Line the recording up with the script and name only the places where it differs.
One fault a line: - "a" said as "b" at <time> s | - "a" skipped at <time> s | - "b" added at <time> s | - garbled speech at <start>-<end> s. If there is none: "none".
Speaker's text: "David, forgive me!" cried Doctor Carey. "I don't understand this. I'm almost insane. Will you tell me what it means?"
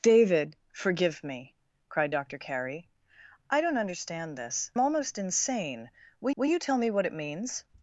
- "I'm" skipped at 4.7 s
- "will" added at 6.3 s